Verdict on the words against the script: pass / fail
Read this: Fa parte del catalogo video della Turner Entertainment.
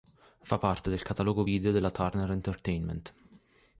pass